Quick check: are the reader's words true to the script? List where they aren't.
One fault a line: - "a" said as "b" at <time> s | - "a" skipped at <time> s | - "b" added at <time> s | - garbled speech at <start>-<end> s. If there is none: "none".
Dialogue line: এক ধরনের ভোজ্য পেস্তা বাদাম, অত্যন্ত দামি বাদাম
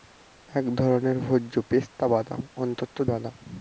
- "দামি" skipped at 3.0 s